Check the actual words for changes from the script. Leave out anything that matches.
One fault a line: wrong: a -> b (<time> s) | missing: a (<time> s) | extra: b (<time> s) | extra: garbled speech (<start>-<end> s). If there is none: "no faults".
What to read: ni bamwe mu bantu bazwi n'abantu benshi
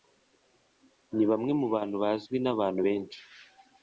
no faults